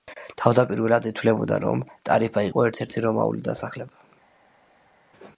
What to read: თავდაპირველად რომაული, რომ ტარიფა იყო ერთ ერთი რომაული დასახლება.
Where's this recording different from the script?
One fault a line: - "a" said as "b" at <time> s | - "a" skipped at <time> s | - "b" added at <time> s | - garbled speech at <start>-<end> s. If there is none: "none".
- "რომაული" said as "ითვლებოდა" at 1.1 s